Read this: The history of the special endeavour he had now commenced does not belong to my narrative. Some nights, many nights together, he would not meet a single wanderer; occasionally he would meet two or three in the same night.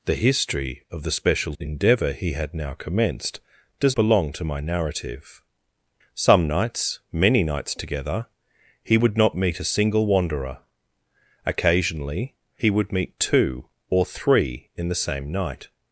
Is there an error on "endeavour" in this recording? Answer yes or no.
no